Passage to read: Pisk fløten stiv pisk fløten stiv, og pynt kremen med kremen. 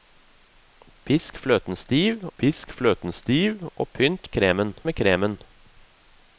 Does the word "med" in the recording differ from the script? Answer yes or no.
no